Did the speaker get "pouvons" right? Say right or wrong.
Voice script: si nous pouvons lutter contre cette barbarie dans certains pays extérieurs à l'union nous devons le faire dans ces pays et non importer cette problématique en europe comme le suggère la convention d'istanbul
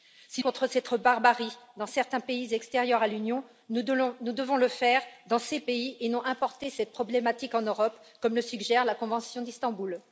wrong